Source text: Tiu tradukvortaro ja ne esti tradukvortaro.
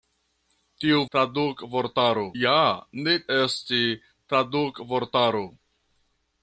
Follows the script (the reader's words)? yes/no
yes